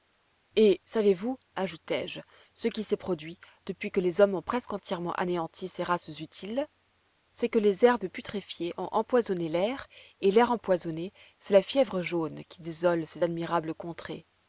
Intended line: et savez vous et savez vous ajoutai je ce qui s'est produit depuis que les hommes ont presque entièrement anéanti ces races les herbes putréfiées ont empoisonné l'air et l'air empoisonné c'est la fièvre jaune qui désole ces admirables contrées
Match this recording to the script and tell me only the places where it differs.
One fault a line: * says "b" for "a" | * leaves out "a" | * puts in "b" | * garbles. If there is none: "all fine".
* leaves out "et savez vous"
* puts in "utiles c'est que"